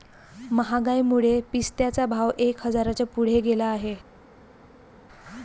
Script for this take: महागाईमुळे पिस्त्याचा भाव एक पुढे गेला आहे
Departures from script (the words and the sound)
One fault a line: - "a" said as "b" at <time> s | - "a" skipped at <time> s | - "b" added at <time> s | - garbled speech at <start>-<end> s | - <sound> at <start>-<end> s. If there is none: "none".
- "हजाराच्या" added at 2.7 s